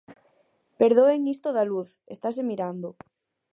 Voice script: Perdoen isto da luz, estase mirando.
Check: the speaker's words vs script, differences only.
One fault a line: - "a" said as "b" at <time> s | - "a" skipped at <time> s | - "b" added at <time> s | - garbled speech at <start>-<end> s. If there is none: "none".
none